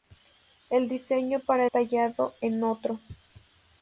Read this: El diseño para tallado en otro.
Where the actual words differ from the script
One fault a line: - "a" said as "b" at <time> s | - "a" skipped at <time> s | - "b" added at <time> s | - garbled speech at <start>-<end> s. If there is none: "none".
none